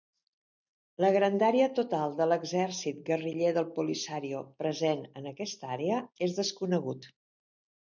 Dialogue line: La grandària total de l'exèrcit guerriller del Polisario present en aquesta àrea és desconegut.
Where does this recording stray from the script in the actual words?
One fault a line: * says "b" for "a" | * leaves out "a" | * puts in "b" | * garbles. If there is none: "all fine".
all fine